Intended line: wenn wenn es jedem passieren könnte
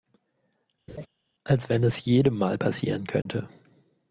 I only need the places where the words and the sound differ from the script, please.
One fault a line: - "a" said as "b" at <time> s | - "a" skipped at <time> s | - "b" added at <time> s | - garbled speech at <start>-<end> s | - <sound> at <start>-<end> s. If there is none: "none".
- laugh at 0.9-1.1 s
- "wenn" said as "als" at 1.4 s
- "mal" added at 2.4 s
- dropout at 3.2-3.3 s